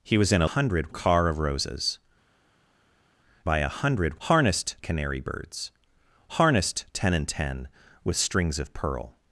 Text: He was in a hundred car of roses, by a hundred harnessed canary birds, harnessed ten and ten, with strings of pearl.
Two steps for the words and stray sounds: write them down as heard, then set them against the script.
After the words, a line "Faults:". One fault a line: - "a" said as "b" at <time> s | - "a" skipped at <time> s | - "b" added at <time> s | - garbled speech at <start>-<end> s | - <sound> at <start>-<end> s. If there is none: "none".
He was in a hundred car of roses, by a hundred harnessed canary birds, harnessed ten and ten, with strings of pearl.
Faults:
none